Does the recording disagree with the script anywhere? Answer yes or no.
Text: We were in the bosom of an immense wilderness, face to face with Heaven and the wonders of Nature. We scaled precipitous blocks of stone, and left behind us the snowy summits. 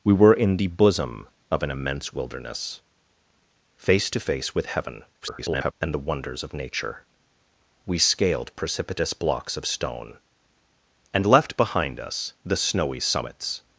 yes